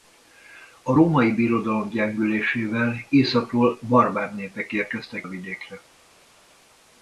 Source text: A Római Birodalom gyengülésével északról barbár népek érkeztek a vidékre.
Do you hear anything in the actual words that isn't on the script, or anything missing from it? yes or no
no